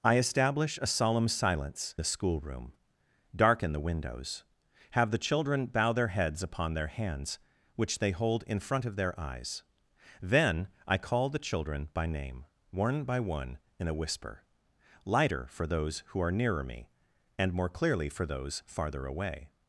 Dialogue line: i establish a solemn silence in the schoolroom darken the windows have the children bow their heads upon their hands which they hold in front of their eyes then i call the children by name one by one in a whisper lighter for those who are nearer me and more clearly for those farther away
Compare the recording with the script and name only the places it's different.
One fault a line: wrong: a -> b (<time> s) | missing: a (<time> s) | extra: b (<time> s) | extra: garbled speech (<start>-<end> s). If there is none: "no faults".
missing: in (1.9 s)